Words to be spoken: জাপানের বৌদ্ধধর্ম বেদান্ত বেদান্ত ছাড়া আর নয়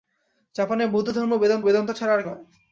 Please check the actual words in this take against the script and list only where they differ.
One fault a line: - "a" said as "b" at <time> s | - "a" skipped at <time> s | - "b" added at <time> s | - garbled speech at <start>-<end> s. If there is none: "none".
none